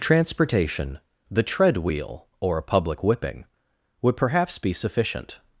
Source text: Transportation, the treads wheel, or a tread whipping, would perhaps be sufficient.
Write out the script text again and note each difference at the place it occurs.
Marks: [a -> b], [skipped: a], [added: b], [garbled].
Transportation, the [treads -> tread] wheel, or a [tread -> public] whipping, would perhaps be sufficient.